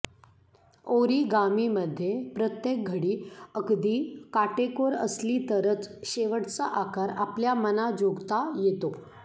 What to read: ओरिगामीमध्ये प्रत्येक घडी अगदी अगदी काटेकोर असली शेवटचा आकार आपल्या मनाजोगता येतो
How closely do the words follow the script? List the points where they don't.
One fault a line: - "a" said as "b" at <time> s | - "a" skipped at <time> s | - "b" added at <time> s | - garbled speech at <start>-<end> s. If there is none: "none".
- "अगदी" skipped at 4.0 s
- "तरच" added at 5.5 s